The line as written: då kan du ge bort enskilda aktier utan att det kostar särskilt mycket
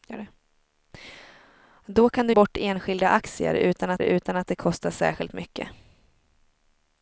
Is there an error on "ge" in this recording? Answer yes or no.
yes